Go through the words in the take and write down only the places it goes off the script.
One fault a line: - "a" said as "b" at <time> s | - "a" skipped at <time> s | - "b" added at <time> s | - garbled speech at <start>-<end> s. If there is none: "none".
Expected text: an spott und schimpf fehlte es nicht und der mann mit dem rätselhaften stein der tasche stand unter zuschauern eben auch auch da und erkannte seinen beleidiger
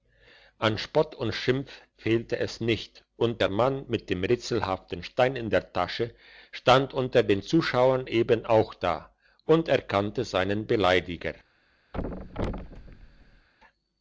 - "in" added at 5.4 s
- "den" added at 7.2 s
- "auch" skipped at 8.7 s